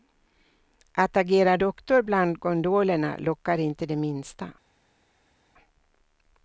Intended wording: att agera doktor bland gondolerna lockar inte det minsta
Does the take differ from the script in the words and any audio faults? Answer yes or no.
no